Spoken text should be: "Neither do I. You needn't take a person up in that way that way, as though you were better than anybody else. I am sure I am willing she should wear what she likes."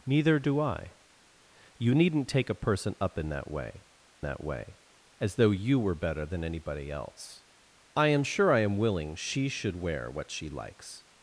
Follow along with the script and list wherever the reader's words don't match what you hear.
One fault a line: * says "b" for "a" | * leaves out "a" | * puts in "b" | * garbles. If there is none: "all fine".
all fine